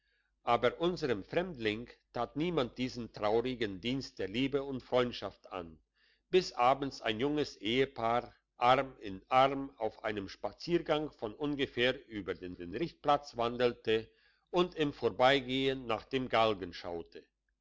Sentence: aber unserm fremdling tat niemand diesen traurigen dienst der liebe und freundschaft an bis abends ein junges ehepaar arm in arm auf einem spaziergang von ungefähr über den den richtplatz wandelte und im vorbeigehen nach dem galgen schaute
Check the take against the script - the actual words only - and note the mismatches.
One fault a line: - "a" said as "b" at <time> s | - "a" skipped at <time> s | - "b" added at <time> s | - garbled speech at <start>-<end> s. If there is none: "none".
none